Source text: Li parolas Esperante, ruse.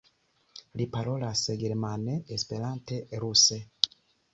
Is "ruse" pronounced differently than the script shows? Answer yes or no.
no